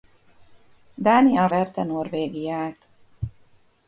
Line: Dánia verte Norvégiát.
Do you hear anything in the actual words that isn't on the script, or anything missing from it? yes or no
no